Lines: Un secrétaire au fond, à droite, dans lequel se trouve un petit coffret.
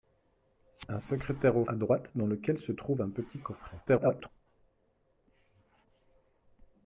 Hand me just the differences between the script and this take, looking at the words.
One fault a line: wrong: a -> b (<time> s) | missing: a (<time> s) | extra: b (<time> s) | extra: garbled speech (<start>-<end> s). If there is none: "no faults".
missing: fond (1.6 s)
extra: garbled speech (3.9-4.3 s)